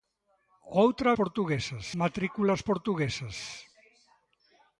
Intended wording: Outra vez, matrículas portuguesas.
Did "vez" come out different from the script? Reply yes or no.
yes